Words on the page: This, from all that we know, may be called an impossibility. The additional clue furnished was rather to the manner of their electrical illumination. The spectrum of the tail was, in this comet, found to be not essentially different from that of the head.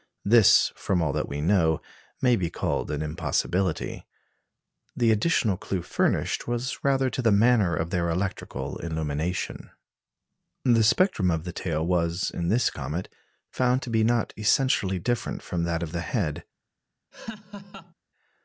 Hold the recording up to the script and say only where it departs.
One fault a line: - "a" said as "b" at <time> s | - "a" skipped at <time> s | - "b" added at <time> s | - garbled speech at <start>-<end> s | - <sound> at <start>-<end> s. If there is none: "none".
- laugh at 17.1-17.9 s